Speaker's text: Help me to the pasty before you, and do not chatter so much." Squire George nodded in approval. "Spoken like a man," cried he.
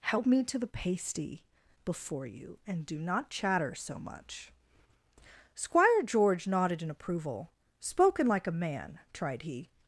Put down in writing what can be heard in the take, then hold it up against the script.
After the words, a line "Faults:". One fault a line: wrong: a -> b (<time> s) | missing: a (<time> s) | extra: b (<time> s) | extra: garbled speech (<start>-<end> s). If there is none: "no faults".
Help me to the pasty before you, and do not chatter so much." Squire George nodded in approval. "Spoken like a man," tried he.
Faults:
wrong: cried -> tried (9.1 s)